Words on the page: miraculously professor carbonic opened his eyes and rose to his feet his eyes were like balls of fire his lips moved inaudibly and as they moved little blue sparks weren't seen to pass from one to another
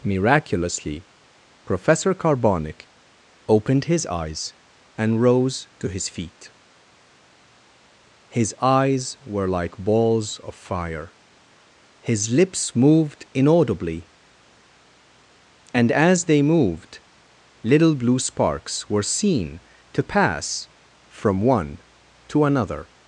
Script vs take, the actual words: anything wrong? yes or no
yes